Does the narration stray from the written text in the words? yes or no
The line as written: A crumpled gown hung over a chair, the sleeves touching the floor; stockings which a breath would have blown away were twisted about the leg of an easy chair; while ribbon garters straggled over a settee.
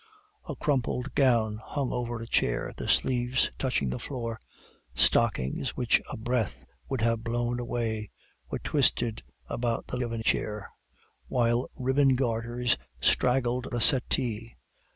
yes